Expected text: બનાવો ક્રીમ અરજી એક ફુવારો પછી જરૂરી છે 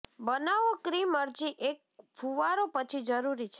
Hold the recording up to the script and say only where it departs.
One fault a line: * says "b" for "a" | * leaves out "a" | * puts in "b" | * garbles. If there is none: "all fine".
all fine